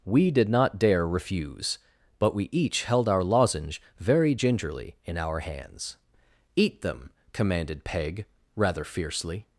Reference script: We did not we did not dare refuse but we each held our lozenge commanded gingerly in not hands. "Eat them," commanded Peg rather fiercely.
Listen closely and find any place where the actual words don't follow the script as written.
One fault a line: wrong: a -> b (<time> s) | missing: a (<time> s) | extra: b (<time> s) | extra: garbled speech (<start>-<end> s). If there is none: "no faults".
missing: we did not (0.8 s)
wrong: commanded -> very (4.0 s)
wrong: not -> our (5.2 s)